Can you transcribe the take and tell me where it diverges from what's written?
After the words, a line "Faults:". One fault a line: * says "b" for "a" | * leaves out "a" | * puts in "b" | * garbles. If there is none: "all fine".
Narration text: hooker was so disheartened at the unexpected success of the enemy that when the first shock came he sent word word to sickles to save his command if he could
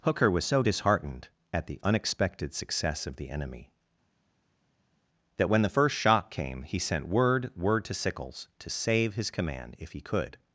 hooker was so disheartened at the unexpected success of the enemy that when the first shock came he sent word word to sickles to save his command if he could
Faults:
all fine